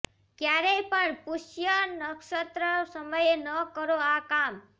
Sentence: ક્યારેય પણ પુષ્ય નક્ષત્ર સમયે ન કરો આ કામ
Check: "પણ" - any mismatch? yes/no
no